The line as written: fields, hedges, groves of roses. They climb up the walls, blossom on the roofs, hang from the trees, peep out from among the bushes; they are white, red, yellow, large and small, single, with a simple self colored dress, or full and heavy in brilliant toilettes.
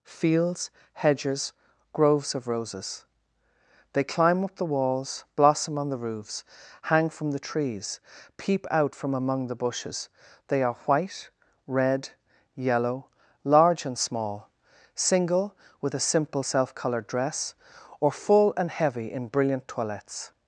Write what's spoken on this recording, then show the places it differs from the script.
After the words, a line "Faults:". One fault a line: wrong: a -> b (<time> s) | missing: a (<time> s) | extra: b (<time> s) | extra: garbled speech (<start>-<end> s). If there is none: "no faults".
fields, hedges, groves of roses. They climb up the walls, blossom on the roofs, hang from the trees, peep out from among the bushes; they are white, red, yellow, large and small, single, with a simple self colored dress, or full and heavy in brilliant toilettes.
Faults:
no faults